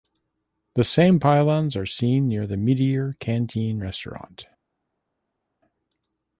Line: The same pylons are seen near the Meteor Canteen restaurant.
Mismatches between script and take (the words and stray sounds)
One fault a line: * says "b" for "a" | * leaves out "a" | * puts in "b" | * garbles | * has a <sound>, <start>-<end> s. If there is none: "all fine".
all fine